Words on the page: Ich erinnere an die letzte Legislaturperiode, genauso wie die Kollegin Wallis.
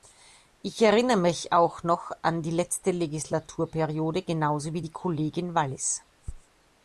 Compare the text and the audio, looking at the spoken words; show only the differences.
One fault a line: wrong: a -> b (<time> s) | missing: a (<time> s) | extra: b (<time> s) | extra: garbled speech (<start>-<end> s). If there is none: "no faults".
extra: mich auch noch (1.2 s)